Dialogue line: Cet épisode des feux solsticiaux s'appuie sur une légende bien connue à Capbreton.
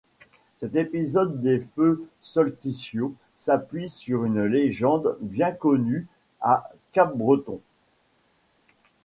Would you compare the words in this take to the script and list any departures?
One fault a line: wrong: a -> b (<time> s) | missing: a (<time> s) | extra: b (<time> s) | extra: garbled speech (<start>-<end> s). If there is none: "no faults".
no faults